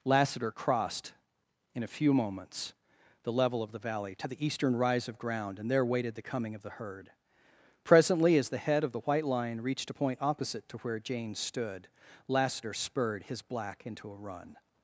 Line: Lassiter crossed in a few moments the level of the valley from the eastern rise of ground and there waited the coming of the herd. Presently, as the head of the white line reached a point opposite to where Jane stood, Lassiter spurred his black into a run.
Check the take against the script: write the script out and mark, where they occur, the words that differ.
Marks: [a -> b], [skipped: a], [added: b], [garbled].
Lassiter crossed in a few moments the level of the valley [from -> to] the eastern rise of ground and there waited the coming of the herd. Presently, as the head of the white line reached a point opposite to where Jane stood, Lassiter spurred his black into a run.